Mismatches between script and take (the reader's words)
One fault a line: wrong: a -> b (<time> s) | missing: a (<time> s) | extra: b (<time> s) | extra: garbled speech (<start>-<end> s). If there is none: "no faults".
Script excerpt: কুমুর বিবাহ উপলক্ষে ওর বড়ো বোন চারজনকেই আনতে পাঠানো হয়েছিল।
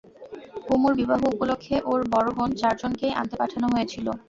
no faults